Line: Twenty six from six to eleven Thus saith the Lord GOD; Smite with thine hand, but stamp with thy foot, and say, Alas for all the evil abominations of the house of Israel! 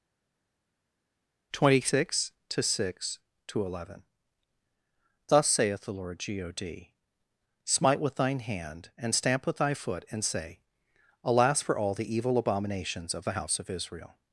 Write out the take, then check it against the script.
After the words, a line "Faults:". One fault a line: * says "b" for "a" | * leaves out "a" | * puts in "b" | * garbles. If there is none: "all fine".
Twenty six to six to eleven Thus saith the Lord GOD; Smite with thine hand, and stamp with thy foot, and say, Alas for all the evil abominations of the house of Israel!
Faults:
* says "to" for "from"
* says "and" for "but"